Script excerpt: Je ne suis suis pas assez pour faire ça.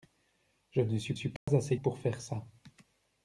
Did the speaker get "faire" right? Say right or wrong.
right